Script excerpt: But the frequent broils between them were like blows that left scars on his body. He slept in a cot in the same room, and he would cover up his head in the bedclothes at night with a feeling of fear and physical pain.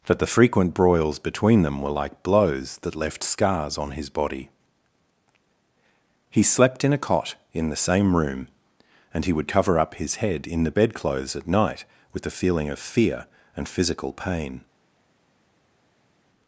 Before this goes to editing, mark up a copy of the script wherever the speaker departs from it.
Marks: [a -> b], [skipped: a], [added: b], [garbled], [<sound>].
[But -> That] the frequent broils between them were like blows that left scars on his body. He slept in a cot in the same room, and he would cover up his head in the bedclothes at night with a feeling of fear and physical pain.